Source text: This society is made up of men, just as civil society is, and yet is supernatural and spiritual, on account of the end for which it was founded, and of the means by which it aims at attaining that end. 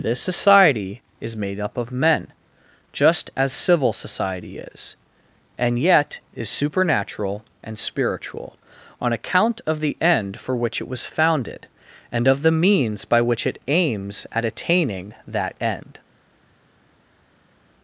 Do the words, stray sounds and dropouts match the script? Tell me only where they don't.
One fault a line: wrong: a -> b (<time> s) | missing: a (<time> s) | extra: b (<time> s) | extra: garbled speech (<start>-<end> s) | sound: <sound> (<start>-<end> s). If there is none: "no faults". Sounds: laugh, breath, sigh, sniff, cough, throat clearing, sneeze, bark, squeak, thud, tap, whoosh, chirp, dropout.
no faults